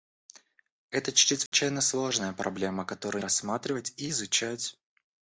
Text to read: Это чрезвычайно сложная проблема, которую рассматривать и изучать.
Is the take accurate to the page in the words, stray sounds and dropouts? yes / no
no